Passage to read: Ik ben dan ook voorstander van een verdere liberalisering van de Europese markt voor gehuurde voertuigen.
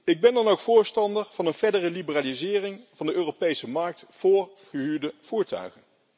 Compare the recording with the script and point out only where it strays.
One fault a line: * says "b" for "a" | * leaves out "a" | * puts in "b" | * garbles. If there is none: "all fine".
all fine